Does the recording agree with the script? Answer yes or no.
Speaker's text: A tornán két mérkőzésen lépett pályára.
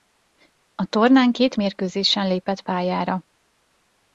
yes